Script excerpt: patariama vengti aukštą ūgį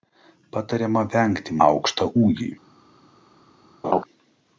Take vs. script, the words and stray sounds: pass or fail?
fail